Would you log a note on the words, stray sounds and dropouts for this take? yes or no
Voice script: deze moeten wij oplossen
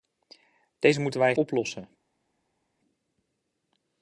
no